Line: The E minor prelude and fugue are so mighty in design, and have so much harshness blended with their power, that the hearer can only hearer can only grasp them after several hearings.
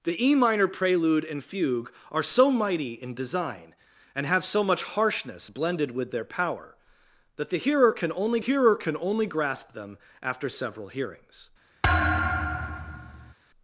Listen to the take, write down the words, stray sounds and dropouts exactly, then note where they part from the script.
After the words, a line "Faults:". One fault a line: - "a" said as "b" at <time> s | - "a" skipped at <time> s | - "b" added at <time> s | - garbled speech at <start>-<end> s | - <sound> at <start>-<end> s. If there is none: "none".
The E minor prelude and fugue are so mighty in design, and have so much harshness blended with their power, that the hearer can only hearer can only grasp them after several hearings.
Faults:
- thud at 11.8-13.3 s